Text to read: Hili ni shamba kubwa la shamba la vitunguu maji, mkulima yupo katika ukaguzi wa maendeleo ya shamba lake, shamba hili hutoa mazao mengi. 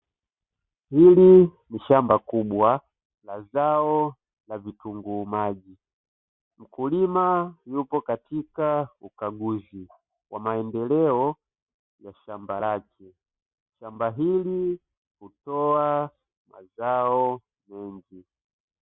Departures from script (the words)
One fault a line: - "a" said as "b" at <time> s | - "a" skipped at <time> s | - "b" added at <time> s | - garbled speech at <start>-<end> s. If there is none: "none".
- "shamba" said as "zao" at 3.4 s